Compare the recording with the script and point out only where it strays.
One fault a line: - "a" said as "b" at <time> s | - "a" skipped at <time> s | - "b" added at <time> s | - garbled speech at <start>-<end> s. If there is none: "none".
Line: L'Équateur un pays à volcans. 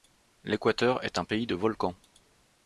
- "est" added at 1.0 s
- "à" said as "de" at 1.4 s